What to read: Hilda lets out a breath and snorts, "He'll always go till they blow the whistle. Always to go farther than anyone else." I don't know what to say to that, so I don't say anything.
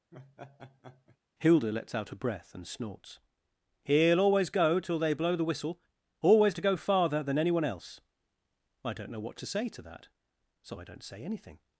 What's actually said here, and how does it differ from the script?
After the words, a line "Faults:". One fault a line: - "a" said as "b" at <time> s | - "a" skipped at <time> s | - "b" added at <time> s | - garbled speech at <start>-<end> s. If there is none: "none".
Hilda lets out a breath and snorts, "He'll always go till they blow the whistle. Always to go farther than anyone else." I don't know what to say to that, so I don't say anything.
Faults:
none